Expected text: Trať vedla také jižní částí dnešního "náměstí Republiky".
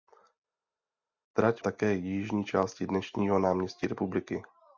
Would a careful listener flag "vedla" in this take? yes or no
yes